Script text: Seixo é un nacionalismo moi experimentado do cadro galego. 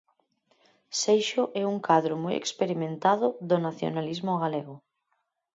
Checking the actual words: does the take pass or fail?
fail